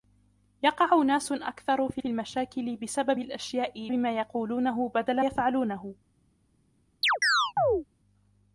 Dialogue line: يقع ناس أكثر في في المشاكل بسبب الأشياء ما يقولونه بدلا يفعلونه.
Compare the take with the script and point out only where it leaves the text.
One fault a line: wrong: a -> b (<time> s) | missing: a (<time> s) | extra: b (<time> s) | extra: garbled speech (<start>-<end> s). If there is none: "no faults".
no faults